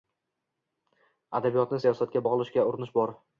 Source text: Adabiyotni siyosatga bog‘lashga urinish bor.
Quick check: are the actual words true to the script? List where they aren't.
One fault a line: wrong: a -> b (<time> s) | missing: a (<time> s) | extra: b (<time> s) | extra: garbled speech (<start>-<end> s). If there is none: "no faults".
no faults